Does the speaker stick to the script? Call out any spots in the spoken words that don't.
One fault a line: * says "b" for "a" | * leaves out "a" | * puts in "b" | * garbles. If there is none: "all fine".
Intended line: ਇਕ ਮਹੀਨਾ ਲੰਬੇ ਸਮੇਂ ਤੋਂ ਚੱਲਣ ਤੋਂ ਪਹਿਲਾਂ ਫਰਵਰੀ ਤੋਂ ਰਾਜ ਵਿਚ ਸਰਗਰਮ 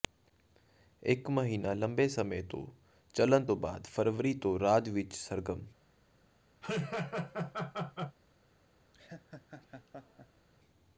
* says "ਬਾਅਦ" for "ਪਹਿਲਾਂ"